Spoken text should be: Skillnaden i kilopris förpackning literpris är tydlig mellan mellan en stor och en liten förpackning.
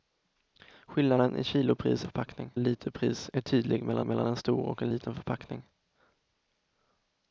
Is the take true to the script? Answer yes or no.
yes